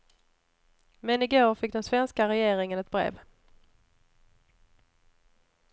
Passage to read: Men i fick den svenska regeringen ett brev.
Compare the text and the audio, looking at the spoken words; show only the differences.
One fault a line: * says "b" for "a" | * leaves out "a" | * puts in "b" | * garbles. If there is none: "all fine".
* puts in "går"